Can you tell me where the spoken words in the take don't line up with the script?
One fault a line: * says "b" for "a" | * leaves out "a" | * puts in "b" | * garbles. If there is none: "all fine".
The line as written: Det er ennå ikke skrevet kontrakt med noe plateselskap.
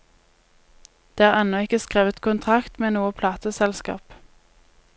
all fine